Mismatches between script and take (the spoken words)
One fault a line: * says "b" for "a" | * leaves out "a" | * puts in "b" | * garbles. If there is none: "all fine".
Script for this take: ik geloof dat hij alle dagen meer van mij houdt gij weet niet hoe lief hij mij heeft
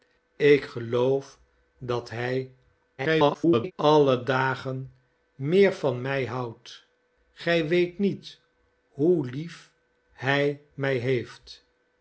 * garbles